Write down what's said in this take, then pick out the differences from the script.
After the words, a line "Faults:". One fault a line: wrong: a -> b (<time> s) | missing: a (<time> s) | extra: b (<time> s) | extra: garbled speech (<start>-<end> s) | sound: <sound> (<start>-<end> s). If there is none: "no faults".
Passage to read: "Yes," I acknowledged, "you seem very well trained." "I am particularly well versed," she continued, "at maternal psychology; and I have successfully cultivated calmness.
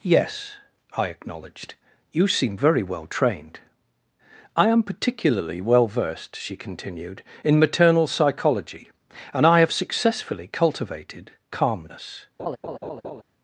"Yes," I acknowledged, "you seem very well trained." "I am particularly well versed," she continued, "in maternal psychology; and I have successfully cultivated calmness.
Faults:
wrong: at -> in (7.4 s)
sound: laugh (12.4-13.2 s)